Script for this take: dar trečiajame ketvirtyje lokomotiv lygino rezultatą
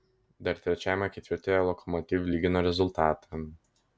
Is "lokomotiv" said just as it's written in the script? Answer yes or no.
yes